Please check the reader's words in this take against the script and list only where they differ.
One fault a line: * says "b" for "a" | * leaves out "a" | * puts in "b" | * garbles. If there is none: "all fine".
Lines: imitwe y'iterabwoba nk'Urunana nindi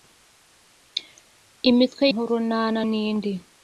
* leaves out "y'iterabwoba"